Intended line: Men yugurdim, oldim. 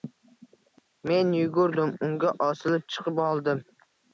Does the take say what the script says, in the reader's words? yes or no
no